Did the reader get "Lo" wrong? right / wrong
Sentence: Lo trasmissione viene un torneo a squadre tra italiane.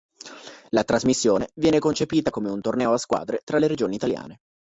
wrong